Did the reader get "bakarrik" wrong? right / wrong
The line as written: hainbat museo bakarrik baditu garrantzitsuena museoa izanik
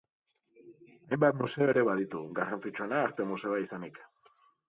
wrong